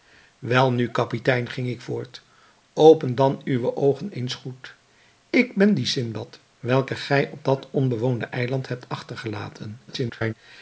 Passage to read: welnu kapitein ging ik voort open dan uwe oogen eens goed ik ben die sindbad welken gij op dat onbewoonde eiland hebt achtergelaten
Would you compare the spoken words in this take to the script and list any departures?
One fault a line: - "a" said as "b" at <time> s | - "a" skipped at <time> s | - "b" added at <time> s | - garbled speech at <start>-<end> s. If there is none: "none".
- garbled speech at 9.9-10.3 s